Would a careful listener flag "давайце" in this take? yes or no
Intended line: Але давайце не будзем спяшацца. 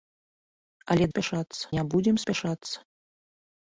yes